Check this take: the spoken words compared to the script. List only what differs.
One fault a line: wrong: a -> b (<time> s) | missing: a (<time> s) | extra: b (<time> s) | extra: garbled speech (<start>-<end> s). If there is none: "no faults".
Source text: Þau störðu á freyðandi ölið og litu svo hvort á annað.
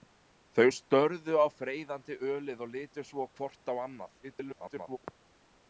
extra: garbled speech (4.2-5.0 s)